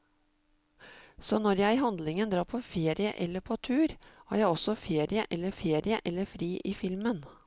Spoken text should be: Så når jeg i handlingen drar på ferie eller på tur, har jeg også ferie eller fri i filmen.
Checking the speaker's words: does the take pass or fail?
fail